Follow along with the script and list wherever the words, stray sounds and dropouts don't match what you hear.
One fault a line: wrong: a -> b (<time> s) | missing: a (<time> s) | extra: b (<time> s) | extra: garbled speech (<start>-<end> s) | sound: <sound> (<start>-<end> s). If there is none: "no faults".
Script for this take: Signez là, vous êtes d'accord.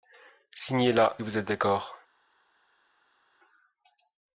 no faults